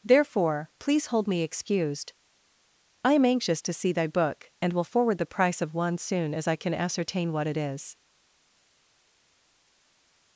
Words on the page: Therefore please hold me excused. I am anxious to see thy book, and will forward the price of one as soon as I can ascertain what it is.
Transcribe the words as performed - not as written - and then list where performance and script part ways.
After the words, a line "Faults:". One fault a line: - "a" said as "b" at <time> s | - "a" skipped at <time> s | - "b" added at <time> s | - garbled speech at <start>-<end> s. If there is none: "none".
Therefore please hold me excused. I am anxious to see thy book, and will forward the price of one soon as I can ascertain what it is.
Faults:
- "as" skipped at 6.0 s